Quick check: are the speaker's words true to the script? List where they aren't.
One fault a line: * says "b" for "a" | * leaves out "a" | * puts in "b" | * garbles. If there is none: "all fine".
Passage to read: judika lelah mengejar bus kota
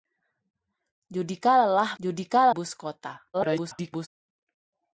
* says "judika" for "mengejar"
* garbles